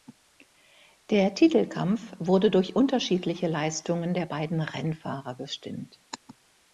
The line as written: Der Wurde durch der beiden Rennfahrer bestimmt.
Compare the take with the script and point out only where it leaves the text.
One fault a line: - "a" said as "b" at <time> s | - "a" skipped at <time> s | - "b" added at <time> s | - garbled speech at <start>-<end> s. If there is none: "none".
- "Titelkampf" added at 1.4 s
- "unterschiedliche Leistungen" added at 2.8 s